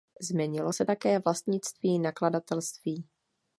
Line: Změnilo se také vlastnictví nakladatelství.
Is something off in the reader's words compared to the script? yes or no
no